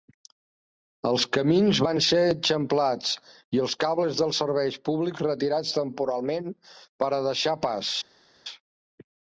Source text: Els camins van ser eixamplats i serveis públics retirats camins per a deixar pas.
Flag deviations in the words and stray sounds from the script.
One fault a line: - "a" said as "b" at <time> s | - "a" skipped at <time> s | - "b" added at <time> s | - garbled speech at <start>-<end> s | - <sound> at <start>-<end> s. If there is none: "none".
- "els cables dels" added at 3.7 s
- "camins" said as "temporalment" at 5.8 s